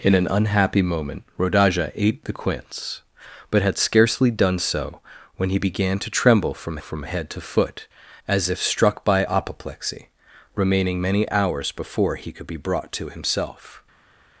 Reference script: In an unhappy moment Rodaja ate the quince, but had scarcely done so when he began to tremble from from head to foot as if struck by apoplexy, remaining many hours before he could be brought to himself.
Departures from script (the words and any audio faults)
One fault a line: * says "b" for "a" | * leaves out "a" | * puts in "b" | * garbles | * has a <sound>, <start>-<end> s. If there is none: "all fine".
all fine